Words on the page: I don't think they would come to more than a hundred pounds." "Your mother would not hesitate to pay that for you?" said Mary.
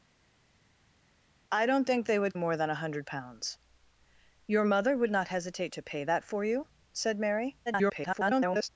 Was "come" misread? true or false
true